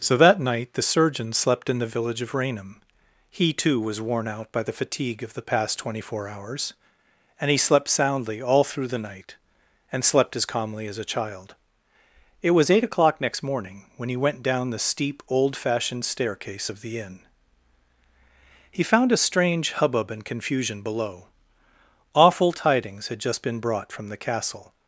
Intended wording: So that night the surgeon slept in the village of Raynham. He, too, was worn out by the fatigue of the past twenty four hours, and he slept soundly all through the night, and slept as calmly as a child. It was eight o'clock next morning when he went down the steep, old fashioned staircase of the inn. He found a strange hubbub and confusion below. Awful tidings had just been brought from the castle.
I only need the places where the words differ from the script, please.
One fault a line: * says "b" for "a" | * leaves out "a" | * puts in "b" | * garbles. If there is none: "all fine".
all fine